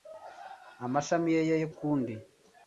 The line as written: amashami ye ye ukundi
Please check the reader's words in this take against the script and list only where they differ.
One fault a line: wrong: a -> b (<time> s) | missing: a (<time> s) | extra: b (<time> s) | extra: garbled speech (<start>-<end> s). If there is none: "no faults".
no faults